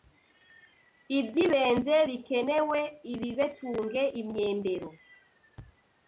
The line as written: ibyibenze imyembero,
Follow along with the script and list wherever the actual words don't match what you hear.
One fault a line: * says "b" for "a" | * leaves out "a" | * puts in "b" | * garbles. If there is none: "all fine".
* puts in "bikenewe ibibetunge"